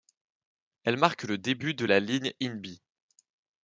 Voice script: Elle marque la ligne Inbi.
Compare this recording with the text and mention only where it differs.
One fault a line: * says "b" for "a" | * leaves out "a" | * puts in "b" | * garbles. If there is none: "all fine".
* puts in "le début de"